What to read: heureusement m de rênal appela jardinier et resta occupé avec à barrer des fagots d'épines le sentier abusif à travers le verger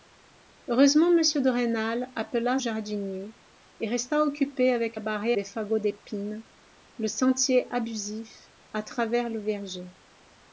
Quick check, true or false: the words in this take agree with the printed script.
true